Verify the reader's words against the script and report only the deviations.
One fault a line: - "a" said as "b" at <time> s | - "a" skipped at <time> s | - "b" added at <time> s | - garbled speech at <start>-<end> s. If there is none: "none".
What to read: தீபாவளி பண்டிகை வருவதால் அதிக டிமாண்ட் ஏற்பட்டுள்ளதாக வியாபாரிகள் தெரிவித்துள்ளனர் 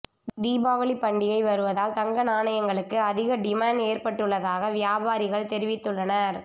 - "தங்க நாணயங்களுக்கு" added at 1.9 s